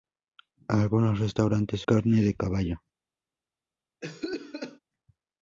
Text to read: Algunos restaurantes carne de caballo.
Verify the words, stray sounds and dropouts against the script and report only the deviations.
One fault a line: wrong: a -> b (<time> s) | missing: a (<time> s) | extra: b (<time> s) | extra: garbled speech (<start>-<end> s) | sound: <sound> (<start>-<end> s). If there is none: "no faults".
sound: cough (4.0-4.8 s)